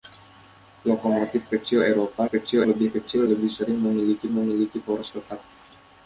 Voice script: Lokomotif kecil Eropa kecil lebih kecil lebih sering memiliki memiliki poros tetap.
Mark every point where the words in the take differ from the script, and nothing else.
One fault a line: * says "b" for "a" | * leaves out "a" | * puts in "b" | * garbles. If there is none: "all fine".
all fine